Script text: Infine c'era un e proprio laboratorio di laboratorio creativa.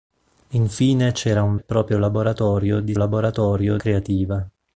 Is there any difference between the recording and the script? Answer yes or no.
no